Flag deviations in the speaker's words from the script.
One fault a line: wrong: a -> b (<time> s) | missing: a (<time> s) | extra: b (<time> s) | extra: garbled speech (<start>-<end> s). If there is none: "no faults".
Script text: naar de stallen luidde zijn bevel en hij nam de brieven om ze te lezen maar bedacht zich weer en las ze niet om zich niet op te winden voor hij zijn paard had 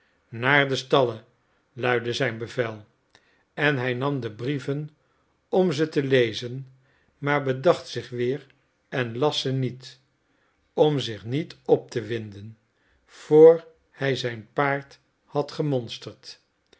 no faults